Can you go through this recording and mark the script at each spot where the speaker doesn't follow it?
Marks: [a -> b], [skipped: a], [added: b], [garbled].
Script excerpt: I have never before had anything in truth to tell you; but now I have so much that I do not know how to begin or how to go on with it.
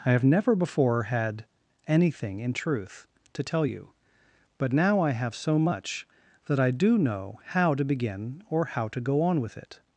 I have never before had anything in truth to tell you; but now I have so much that I do [skipped: not] know how to begin or how to go on with it.